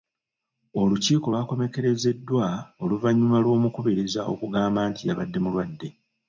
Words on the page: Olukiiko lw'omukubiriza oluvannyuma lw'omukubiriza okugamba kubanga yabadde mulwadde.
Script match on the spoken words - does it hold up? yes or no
no